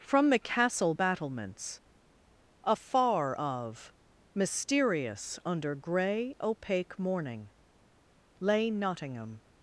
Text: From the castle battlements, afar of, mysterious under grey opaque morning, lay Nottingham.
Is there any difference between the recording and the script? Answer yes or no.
no